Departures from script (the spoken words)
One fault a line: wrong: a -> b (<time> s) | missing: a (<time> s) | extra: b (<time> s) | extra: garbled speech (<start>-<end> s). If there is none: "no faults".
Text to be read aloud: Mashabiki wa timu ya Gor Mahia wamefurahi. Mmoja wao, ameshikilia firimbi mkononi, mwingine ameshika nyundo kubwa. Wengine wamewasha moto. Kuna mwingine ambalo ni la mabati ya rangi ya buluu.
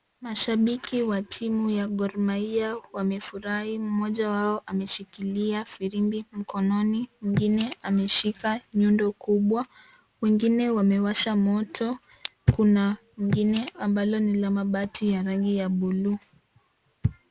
no faults